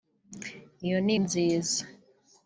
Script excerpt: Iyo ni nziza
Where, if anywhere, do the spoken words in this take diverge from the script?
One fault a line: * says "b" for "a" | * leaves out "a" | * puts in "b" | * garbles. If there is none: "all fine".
all fine